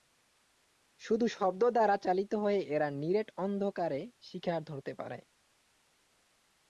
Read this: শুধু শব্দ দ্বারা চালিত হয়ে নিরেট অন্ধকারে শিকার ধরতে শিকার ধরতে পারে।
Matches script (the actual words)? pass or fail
fail